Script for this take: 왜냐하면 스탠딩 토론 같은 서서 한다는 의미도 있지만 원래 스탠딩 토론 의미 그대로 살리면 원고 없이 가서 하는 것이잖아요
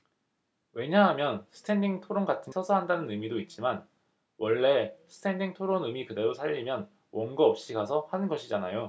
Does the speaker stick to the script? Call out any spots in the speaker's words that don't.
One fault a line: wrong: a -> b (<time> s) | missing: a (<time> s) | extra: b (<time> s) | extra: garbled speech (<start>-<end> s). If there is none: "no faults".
no faults